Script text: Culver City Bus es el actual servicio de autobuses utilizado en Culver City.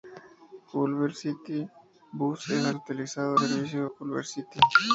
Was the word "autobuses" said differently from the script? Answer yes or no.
yes